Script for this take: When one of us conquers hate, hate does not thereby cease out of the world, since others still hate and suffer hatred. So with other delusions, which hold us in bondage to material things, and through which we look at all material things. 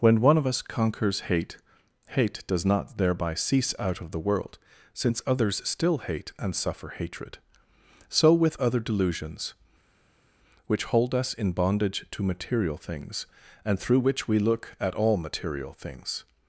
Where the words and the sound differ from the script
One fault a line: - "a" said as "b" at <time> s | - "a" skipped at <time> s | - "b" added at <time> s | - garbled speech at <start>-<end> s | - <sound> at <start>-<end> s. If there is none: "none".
none